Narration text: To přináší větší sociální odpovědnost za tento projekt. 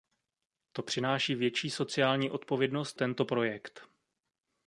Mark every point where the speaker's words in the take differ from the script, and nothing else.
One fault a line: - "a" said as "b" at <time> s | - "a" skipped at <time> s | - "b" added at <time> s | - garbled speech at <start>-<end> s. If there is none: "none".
- "za" skipped at 3.0 s